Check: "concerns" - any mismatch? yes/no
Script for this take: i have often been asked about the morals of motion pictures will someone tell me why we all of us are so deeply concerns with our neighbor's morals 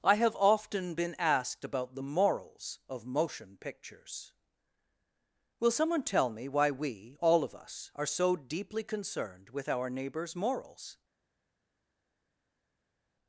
yes